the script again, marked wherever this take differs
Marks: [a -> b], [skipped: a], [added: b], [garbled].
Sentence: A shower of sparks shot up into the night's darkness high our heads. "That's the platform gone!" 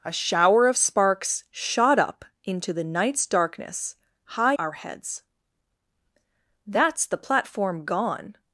A shower of sparks shot up into the night's darkness high our heads. "That's the platform gone!"